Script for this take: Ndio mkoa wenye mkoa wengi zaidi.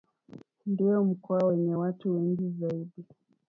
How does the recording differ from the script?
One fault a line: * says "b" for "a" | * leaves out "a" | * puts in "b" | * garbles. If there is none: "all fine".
* says "watu" for "mkoa"